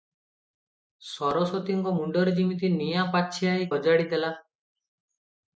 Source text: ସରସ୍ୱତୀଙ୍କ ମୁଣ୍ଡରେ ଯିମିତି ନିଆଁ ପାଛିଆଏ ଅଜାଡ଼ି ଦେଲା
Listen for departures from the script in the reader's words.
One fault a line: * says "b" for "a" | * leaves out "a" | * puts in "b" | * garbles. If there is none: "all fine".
all fine